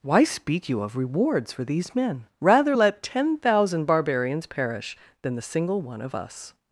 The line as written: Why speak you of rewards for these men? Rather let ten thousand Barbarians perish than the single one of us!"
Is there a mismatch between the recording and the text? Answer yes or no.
no